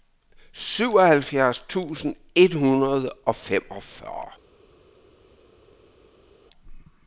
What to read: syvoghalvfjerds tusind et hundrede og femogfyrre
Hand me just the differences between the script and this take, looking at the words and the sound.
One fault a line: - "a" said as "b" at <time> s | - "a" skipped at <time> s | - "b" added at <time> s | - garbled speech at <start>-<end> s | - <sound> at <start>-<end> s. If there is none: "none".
none